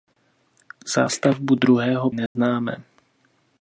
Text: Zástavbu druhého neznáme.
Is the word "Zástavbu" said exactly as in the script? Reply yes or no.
yes